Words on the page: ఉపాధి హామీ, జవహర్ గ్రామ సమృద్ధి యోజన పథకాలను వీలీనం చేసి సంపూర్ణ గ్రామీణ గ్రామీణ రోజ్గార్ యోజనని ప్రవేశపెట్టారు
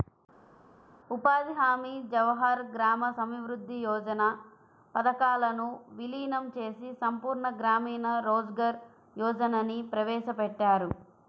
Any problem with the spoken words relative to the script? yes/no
yes